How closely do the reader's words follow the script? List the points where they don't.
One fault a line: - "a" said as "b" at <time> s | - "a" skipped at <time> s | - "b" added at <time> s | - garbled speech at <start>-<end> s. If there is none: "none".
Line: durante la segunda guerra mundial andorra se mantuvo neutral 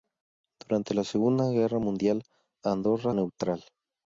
- "se mantuvo" skipped at 3.1 s